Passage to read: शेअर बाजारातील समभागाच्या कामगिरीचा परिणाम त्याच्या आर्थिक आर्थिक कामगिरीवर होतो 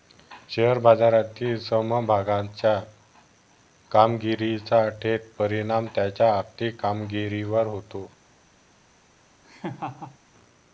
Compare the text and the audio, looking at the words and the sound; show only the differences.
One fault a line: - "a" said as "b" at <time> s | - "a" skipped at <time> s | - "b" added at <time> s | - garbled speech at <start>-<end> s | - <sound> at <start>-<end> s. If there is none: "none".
- "थेट" added at 5.0 s
- "आर्थिक" skipped at 6.8 s
- laugh at 9.4-10.2 s